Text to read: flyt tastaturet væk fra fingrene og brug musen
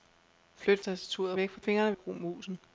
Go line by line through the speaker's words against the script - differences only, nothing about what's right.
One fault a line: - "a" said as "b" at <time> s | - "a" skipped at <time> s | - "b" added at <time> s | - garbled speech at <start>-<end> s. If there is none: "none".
none